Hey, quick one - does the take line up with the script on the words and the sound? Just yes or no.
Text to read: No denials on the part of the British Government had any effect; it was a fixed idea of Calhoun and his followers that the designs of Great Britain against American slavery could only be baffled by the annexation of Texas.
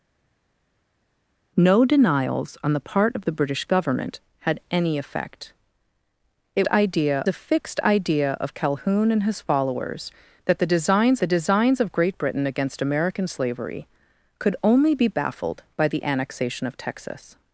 no